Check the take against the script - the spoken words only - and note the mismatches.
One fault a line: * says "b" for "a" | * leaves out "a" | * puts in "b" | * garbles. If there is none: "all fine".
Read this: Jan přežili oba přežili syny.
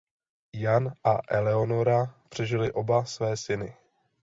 * puts in "a Eleonora"
* says "své" for "přežili"